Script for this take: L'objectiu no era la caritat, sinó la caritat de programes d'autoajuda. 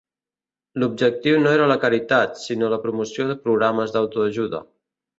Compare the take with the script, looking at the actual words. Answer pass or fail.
fail